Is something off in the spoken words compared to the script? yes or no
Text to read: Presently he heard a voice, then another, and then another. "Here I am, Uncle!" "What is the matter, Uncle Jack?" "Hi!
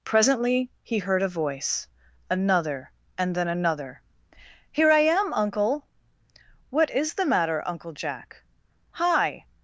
yes